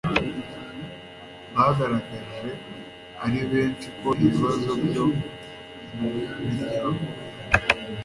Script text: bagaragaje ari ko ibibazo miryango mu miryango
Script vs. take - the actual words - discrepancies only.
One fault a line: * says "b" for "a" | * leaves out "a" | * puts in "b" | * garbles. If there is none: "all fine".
* puts in "benshi"
* says "byo" for "miryango"